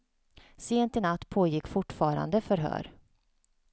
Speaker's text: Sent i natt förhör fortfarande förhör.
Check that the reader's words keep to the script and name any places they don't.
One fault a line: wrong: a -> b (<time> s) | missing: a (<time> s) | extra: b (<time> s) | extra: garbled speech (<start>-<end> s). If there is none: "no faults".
wrong: förhör -> pågick (1.3 s)